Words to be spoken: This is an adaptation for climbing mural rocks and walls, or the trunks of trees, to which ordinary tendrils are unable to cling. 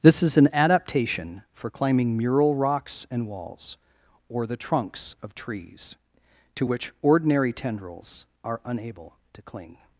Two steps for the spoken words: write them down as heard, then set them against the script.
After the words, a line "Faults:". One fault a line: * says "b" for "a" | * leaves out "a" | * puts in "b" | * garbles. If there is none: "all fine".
This is an adaptation for climbing mural rocks and walls, or the trunks of trees, to which ordinary tendrils are unable to cling.
Faults:
all fine